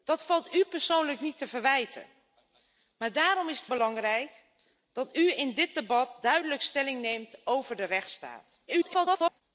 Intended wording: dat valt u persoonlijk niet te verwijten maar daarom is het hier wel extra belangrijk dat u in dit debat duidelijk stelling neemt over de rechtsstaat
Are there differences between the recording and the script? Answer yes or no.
yes